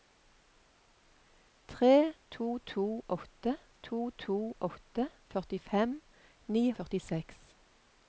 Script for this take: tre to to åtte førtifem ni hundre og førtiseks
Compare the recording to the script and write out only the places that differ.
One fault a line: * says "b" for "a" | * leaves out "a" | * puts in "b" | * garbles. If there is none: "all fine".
* puts in "to to åtte"
* leaves out "hundre"